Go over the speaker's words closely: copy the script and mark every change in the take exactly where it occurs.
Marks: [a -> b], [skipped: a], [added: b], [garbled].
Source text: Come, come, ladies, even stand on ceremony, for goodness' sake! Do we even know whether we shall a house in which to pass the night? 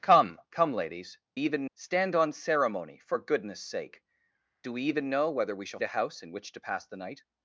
Come, come, ladies, even stand on ceremony, for goodness' sake! Do we even know whether we shall a house in which to pass the night?